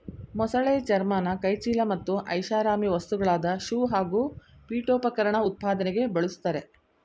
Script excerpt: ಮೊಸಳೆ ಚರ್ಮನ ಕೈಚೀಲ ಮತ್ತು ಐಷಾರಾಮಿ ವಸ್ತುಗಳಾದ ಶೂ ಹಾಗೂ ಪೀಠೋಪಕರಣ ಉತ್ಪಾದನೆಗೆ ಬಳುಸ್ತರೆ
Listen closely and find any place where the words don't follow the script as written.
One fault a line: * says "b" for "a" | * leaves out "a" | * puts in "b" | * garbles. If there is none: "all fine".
all fine